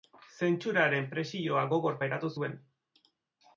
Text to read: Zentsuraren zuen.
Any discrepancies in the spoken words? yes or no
yes